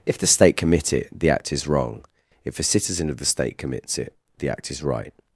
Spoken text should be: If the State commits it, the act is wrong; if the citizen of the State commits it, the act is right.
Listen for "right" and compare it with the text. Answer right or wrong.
right